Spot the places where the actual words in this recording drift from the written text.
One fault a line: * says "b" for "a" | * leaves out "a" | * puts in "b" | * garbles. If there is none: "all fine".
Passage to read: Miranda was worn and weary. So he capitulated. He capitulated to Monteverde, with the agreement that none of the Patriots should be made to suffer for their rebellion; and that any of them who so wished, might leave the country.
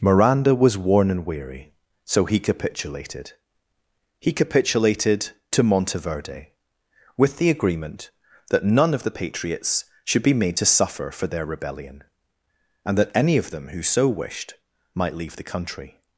all fine